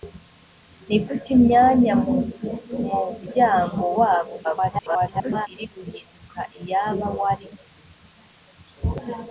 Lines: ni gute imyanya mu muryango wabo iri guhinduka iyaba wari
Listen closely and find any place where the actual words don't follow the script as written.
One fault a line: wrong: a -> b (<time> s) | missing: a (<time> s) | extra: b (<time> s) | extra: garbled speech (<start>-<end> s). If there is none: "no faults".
extra: garbled speech (4.4-5.5 s)